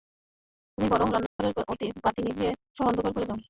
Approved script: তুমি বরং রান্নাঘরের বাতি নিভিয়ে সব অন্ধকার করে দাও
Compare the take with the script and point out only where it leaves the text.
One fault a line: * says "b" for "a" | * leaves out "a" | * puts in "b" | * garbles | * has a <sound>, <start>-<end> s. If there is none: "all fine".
* has a dropout, 1.3-1.4 s